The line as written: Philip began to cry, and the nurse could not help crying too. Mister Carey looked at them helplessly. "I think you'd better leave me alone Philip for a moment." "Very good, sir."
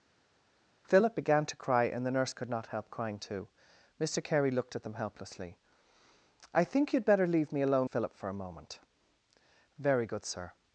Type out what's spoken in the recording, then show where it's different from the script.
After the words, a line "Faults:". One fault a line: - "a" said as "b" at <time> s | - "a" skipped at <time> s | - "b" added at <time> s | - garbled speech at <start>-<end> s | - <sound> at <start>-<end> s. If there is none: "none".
Philip began to cry, and the nurse could not help crying too. Mister Carey looked at them helplessly. "I think you'd better leave me alone Philip for a moment." "Very good, sir."
Faults:
none